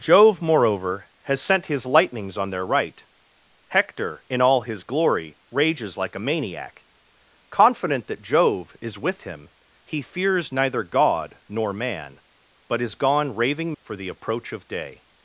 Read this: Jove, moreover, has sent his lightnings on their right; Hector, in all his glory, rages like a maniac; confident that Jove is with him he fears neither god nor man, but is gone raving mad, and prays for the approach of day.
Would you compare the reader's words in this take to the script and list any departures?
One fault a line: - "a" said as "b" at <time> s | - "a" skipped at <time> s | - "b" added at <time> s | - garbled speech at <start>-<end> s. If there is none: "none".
- "mad and prays" skipped at 13.7 s